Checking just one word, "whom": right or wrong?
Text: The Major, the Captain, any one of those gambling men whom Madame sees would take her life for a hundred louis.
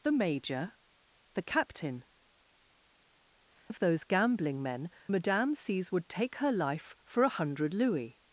wrong